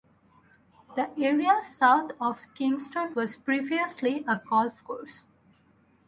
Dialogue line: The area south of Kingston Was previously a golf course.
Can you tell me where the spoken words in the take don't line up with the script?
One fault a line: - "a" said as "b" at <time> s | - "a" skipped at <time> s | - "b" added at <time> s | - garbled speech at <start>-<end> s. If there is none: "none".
none